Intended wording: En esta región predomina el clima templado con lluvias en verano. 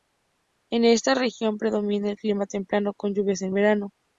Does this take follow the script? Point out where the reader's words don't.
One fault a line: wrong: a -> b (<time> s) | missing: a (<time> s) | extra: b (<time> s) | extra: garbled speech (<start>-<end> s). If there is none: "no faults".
no faults